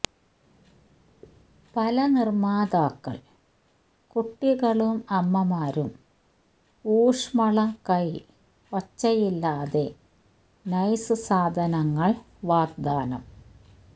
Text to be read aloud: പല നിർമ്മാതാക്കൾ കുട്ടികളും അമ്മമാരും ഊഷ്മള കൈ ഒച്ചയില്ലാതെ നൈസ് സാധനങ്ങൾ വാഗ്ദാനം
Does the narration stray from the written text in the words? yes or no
no